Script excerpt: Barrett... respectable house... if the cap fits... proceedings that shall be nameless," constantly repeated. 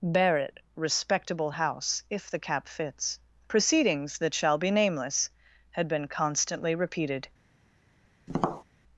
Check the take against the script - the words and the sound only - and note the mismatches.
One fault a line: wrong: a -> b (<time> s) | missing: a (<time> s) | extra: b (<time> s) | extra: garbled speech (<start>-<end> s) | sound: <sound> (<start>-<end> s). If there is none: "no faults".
extra: had been (5.7 s)
sound: tap (8.3-8.6 s)